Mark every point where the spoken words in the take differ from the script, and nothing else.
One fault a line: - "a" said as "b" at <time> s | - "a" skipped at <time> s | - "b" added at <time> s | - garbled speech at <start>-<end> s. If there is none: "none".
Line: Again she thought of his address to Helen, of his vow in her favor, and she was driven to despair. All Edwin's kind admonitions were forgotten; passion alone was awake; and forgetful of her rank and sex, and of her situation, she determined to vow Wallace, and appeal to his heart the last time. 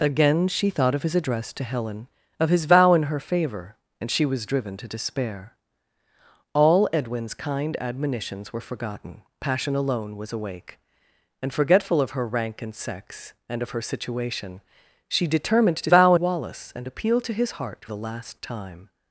none